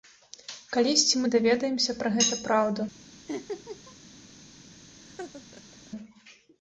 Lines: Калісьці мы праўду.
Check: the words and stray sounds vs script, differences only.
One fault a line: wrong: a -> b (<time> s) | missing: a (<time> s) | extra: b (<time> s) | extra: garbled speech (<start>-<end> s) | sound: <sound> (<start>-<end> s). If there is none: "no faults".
extra: даведаемся пра гэта (1.4 s)
sound: laugh (3.3-4.0 s)
sound: laugh (5.0-5.9 s)